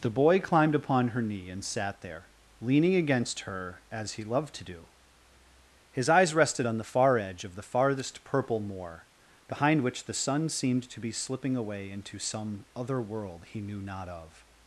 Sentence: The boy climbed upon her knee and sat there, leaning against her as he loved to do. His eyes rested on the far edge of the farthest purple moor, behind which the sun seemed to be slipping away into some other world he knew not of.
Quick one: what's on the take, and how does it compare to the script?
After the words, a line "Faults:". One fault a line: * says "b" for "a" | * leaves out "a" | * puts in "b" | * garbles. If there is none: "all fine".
The boy climbed upon her knee and sat there, leaning against her as he loved to do. His eyes rested on the far edge of the farthest purple moor, behind which the sun seemed to be slipping away into some other world he knew not of.
Faults:
all fine